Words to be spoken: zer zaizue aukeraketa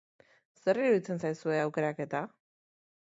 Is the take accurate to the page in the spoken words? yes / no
no